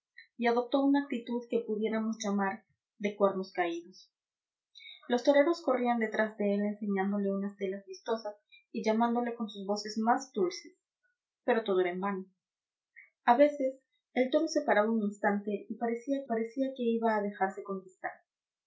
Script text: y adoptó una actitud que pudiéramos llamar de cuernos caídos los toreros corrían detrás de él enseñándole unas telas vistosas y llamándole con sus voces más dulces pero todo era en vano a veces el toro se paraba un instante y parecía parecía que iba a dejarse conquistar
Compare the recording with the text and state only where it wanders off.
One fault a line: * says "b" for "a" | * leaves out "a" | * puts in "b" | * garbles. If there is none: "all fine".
all fine